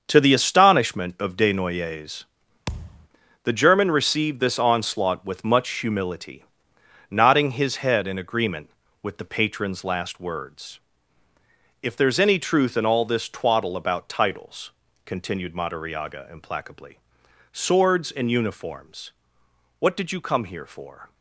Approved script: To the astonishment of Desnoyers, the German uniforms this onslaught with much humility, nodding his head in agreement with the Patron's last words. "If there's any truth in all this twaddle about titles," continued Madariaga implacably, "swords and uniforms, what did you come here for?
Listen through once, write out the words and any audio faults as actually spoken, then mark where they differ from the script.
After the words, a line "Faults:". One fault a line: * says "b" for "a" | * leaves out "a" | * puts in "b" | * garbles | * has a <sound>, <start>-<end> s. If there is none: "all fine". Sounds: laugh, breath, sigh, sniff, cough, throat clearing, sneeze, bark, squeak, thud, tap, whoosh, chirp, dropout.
To the astonishment of Desnoyers, the German received this onslaught with much humility, nodding his head in agreement with the Patron's last words. "If there's any truth in all this twaddle about titles," continued Madariaga implacably, "swords and uniforms, what did you come here for?
Faults:
* has a thud, 2.7-3.1 s
* says "received" for "uniforms"